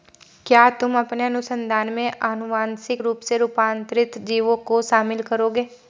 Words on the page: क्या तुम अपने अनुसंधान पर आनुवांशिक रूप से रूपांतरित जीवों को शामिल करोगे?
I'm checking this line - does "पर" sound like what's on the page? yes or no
no